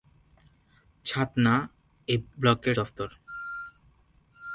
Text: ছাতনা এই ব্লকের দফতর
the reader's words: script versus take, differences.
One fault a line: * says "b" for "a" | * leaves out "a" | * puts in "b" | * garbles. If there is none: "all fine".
all fine